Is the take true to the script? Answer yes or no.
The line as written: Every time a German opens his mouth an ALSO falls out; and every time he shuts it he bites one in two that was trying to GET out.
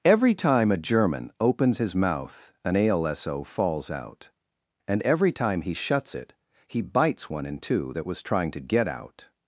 yes